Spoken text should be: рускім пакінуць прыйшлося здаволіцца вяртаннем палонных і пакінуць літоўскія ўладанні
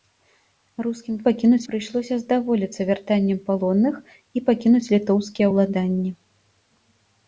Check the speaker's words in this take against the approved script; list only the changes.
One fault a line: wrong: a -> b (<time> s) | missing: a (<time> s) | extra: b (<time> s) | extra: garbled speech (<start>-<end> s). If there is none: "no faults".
no faults